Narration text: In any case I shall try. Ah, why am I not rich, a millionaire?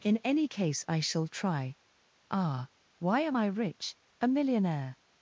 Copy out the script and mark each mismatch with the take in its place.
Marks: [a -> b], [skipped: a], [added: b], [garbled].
In any case I shall try. Ah, why am I [skipped: not] rich, a millionaire?